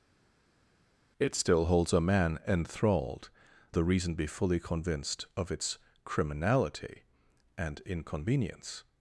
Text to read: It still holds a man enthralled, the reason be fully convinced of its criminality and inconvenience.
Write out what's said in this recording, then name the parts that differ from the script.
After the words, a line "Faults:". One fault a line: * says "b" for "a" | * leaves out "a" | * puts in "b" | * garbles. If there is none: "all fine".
It still holds a man enthralled, the reason be fully convinced of its criminality and inconvenience.
Faults:
all fine